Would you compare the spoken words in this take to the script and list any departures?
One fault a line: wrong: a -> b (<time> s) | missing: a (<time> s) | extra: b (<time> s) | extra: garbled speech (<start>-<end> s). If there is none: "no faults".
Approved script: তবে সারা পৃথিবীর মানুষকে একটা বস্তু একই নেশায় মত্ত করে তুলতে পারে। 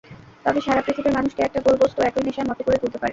extra: গোল (1.6 s)